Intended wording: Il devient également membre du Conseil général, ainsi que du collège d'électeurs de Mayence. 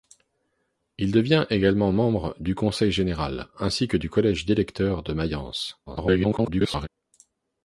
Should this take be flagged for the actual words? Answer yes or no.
yes